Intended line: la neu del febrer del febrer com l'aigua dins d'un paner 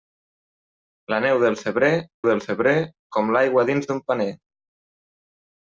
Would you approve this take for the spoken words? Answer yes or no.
yes